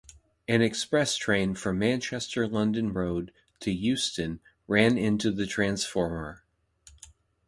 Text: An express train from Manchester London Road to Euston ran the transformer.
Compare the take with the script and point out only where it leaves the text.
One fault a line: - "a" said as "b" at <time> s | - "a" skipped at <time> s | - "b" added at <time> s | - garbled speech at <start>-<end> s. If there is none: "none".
- "into" added at 4.9 s